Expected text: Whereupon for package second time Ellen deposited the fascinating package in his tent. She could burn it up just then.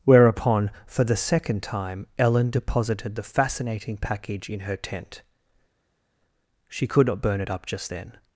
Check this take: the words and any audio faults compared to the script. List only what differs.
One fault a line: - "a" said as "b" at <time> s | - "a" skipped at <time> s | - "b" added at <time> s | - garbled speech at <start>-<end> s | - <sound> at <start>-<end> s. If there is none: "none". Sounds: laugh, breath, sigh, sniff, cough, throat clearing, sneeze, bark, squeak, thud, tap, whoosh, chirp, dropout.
- "package" said as "the" at 1.0 s
- "his" said as "her" at 4.6 s
- "not" added at 7.1 s